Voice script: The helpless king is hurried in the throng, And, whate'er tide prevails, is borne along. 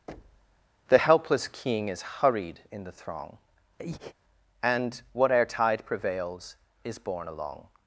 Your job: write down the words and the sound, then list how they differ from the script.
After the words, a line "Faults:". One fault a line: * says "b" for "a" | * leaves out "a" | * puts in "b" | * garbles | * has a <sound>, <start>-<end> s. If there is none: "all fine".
The helpless king is hurried in the throng, And, whate'er tide prevails, is borne along.
Faults:
* has a thud, 0.1-0.7 s
* has a breath, 3.8-4.1 s